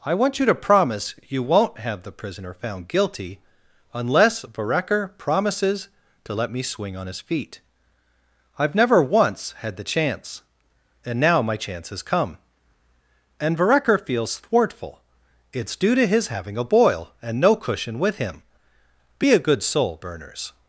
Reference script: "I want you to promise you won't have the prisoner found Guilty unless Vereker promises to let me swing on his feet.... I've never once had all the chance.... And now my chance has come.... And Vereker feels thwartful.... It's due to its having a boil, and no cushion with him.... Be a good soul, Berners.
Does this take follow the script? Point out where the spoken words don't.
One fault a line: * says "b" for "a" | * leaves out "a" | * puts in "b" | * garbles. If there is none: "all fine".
* leaves out "all"
* says "his" for "its"